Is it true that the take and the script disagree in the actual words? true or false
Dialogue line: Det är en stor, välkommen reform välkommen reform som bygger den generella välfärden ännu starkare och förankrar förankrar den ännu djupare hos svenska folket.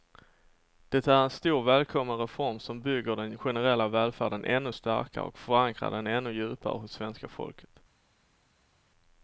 true